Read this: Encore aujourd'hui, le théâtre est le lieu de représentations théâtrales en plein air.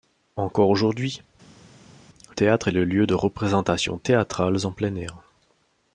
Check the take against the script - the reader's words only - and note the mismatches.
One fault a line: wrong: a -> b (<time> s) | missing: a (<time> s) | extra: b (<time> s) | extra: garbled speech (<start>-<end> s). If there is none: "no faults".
missing: le (1.2 s)